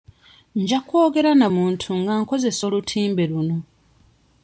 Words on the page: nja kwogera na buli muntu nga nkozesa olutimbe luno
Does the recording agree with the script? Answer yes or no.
no